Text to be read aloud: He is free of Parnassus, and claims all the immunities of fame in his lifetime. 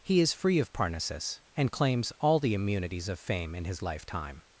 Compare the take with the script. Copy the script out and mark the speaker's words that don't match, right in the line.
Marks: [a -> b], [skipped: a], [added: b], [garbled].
He is free of Parnassus, and claims all the immunities of fame in his lifetime.